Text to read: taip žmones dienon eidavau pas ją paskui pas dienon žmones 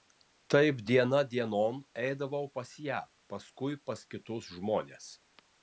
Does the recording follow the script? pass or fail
fail